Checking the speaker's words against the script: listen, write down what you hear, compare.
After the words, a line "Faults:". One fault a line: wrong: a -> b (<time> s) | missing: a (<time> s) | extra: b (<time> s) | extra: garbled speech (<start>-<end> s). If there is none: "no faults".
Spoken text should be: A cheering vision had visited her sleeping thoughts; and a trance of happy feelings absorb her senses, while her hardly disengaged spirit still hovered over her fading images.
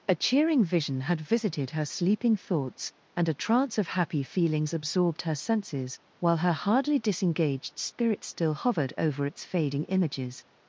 A cheering vision had visited her sleeping thoughts; and a trance of happy feelings absorbed her senses, while her hardly disengaged spirit still hovered over its fading images.
Faults:
wrong: absorb -> absorbed (4.7 s)
wrong: her -> its (9.3 s)